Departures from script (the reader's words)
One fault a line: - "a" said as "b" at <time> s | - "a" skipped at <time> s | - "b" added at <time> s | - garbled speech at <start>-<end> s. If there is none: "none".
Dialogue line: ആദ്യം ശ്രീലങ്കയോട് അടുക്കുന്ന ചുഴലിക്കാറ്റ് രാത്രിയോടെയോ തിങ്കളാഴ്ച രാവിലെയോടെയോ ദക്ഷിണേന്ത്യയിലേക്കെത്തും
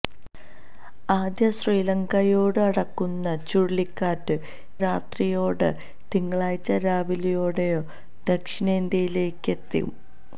none